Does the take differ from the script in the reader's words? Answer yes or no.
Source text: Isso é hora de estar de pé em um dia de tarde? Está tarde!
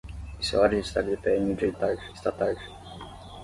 no